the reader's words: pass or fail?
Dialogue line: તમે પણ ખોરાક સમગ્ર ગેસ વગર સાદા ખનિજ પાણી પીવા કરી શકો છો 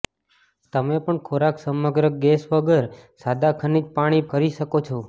fail